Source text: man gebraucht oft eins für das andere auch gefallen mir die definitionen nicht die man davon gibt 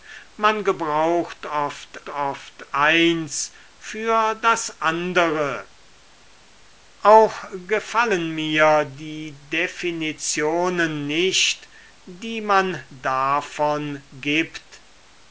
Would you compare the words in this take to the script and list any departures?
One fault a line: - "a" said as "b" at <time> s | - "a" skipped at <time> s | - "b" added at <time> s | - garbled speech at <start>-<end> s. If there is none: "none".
- "oft" added at 2.1 s